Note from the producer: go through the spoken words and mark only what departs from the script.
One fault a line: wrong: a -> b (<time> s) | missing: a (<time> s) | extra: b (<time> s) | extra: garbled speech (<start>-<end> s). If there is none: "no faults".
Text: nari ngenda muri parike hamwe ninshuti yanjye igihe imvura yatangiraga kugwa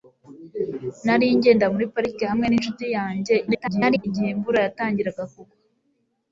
extra: garbled speech (3.5-4.1 s)